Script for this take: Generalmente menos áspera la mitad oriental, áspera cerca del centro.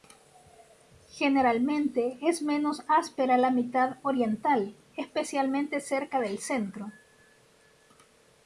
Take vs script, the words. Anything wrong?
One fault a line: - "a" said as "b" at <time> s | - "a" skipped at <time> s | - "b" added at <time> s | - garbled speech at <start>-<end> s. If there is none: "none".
- "es" added at 2.2 s
- "áspera" said as "especialmente" at 4.9 s